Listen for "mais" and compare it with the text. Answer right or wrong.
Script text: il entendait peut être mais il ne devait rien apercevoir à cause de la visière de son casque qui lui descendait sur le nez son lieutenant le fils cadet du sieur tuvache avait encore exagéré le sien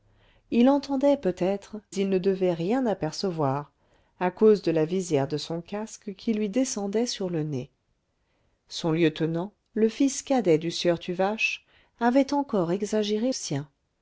wrong